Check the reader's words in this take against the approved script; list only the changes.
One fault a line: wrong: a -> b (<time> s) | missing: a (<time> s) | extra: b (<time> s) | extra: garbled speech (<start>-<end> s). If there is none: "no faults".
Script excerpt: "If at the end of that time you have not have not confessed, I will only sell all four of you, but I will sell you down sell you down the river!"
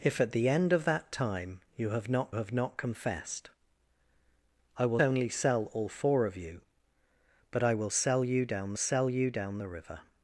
no faults